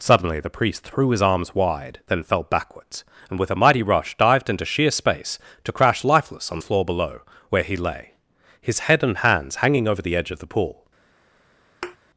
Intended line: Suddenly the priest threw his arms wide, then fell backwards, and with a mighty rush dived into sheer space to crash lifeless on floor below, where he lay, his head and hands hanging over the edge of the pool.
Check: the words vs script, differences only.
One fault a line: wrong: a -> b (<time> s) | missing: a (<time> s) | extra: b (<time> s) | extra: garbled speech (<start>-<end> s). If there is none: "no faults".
no faults